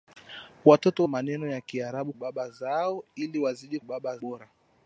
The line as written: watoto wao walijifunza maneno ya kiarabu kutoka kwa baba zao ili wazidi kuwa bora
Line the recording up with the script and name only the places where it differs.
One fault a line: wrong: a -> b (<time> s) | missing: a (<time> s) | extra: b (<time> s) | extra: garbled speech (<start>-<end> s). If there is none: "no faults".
missing: wao walijifunza (1.1 s)
missing: kutoka kwa (2.1 s)
wrong: kuwa -> baba (3.8 s)